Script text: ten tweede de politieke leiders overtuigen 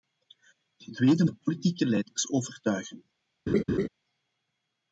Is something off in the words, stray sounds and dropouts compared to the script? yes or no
yes